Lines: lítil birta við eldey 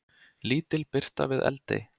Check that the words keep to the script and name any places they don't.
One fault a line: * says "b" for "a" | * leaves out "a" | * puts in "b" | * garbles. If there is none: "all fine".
all fine